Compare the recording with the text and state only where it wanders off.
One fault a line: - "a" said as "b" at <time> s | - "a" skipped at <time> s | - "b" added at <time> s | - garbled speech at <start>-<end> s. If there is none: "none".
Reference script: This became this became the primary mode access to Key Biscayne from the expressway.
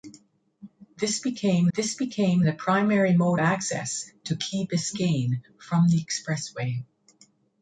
none